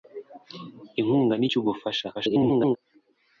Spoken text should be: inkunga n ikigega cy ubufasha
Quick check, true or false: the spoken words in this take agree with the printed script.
false